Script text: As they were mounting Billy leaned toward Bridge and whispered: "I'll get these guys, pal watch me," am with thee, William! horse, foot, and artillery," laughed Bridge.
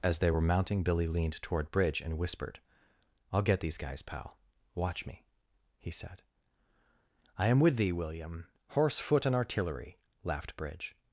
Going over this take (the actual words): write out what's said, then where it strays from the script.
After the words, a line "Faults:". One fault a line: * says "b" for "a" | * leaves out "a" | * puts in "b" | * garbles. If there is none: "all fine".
As they were mounting Billy leaned toward Bridge and whispered: "I'll get these guys, pal watch me," he said. "I am with thee, William! horse, foot, and artillery," laughed Bridge.
Faults:
* puts in "he said I"